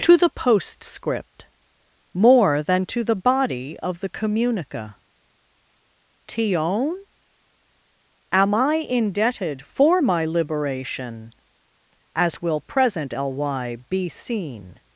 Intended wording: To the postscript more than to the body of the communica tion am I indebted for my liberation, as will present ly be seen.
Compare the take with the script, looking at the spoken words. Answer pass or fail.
pass